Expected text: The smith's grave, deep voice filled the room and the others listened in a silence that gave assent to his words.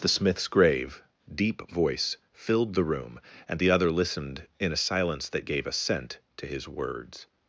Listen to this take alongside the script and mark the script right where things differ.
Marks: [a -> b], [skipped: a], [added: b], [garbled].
The smith's grave, deep voice filled the room and the [others -> other] listened in a silence that gave assent to his words.